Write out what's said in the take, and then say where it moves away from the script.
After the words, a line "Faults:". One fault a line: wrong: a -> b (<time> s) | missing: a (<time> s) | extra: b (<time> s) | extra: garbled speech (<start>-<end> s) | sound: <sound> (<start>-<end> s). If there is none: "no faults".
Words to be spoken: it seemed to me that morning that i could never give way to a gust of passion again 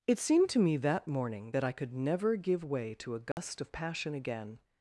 it seemed to me that morning that i could never give way to a gust of passion again
Faults:
sound: dropout (3.3-3.4 s)